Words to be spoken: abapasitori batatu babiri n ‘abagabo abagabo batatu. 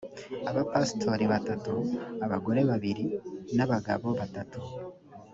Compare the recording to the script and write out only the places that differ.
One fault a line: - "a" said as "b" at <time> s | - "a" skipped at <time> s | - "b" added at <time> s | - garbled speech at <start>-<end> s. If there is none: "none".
- "abagore" added at 2.2 s
- "abagabo" skipped at 4.1 s